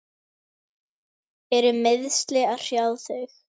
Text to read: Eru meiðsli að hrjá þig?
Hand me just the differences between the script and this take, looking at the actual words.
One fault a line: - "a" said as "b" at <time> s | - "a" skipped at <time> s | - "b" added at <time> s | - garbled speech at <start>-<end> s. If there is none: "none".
none